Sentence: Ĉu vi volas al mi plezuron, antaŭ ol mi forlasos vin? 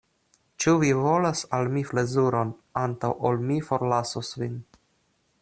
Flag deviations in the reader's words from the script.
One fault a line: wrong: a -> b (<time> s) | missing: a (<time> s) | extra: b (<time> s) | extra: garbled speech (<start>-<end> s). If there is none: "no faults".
no faults